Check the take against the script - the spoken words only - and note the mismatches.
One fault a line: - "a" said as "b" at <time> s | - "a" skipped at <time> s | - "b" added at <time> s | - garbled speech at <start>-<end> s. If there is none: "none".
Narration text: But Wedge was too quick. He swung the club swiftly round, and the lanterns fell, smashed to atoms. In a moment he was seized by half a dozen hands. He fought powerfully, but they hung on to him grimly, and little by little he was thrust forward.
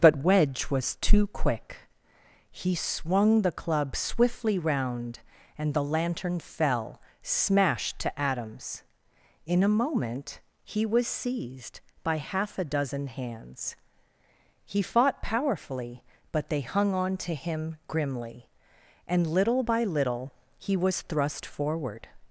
- "lanterns" said as "lantern" at 5.8 s